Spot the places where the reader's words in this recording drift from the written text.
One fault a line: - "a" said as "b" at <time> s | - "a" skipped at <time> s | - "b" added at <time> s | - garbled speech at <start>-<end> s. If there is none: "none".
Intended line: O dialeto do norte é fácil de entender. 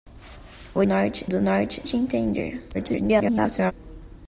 - "dialeto" said as "norte" at 0.8 s
- "é fácil" skipped at 1.8 s
- garbled speech at 2.7-3.7 s